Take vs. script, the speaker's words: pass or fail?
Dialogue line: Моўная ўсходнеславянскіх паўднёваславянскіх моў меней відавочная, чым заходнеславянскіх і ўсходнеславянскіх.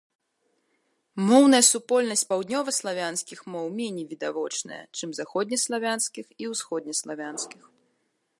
fail